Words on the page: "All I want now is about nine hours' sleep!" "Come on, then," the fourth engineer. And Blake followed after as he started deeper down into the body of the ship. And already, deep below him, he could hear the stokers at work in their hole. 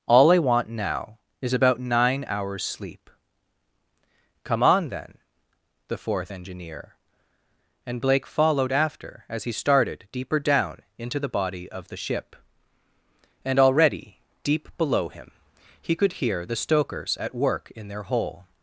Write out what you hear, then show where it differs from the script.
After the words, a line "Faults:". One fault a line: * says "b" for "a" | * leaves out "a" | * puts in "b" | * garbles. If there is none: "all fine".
"All I want now is about nine hours' sleep!" "Come on, then," the fourth engineer. And Blake followed after as he started deeper down into the body of the ship. And already, deep below him, he could hear the stokers at work in their hole.
Faults:
all fine